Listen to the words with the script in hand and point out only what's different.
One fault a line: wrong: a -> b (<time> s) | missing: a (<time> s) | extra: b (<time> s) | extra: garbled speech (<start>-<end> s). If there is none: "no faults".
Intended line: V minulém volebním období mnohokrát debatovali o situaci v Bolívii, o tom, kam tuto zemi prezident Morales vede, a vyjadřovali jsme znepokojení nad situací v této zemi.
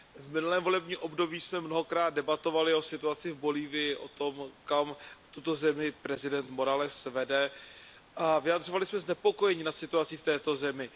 extra: jsme (1.4 s)